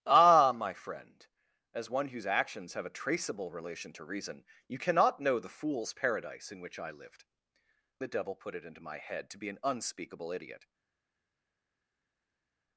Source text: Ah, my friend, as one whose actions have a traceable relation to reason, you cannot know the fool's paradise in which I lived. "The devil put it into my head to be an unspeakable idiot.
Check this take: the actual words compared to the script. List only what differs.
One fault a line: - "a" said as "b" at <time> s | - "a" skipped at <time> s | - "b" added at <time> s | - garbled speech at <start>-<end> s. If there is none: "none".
none